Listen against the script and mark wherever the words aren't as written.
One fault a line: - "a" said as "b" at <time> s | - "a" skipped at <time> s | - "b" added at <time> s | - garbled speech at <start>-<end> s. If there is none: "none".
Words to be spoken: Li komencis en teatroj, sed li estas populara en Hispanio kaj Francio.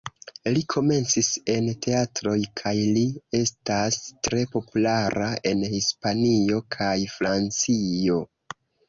- "sed" said as "kaj" at 2.6 s
- "tre" added at 4.3 s